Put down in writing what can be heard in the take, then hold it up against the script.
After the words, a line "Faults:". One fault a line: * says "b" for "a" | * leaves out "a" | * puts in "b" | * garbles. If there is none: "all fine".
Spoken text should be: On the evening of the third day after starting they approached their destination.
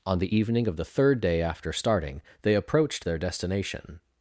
On the evening of the third day after starting they approached their destination.
Faults:
all fine